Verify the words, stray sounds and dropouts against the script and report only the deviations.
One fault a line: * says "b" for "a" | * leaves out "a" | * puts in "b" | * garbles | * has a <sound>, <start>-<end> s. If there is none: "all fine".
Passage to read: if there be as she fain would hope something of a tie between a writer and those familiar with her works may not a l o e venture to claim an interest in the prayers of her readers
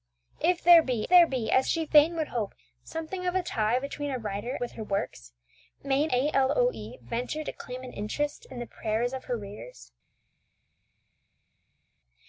* puts in "there be"
* leaves out "and those familiar"
* leaves out "not"